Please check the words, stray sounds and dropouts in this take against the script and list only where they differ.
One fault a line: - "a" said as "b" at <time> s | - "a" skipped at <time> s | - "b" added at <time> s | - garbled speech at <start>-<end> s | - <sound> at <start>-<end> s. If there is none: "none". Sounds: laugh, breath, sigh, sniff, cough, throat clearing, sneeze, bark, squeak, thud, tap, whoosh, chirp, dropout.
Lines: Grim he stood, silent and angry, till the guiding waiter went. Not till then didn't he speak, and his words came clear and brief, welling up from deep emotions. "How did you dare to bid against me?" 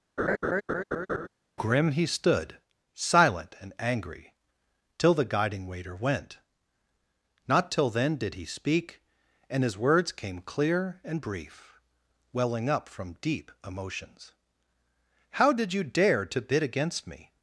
- laugh at 0.2-1.3 s
- "didn't" said as "did" at 8.1 s